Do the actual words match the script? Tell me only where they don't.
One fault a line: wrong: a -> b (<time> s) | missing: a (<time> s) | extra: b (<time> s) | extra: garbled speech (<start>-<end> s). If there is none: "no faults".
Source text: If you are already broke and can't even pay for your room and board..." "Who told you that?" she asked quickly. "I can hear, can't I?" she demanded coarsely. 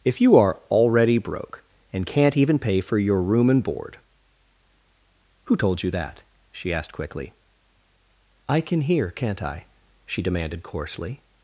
no faults